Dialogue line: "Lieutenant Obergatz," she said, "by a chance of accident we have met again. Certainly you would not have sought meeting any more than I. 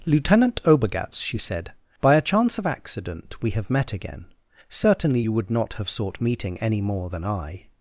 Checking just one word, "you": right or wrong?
right